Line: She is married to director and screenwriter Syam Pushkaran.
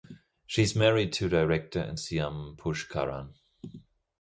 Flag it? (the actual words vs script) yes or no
yes